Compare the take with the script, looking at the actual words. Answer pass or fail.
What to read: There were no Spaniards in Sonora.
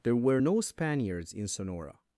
pass